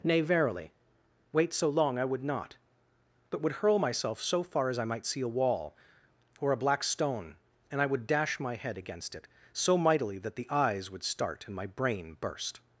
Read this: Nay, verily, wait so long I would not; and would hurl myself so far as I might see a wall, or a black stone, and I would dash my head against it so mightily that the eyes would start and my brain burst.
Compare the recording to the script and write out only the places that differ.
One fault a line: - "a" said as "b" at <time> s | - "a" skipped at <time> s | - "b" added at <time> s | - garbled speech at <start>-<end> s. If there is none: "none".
- "and" said as "but" at 3.3 s